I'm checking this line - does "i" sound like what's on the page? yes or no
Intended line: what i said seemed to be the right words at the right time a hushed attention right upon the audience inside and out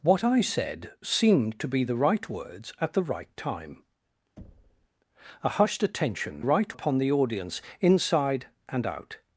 yes